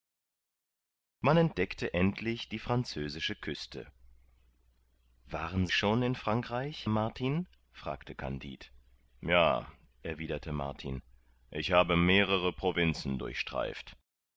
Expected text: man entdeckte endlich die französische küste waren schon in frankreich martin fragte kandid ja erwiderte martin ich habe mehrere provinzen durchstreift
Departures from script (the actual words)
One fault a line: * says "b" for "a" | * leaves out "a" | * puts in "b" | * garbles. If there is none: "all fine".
all fine